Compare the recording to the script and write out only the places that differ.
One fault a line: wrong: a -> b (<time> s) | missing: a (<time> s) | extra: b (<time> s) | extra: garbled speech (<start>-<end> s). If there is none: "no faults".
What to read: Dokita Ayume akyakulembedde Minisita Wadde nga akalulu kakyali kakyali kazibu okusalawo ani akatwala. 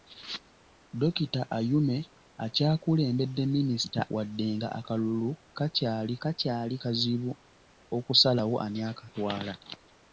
no faults